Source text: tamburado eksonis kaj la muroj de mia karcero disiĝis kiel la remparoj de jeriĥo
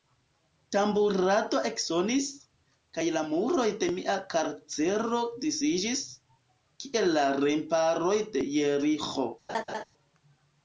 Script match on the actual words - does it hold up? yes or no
yes